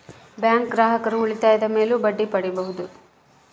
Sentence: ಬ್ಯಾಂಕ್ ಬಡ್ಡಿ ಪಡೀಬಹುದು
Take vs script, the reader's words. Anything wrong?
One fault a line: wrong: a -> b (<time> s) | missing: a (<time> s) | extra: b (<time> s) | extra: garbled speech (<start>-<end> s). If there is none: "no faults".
extra: ಗ್ರಾಹಕರು ಉಳಿತಾಯದ ಮೇಲೂ (0.7 s)